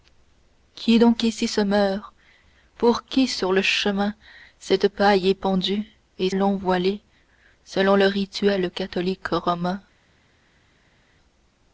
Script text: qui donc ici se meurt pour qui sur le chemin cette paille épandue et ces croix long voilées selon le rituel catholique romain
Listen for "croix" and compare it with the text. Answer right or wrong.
wrong